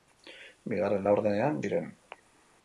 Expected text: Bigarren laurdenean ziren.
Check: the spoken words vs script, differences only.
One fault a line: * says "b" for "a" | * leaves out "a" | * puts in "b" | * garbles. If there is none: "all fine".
all fine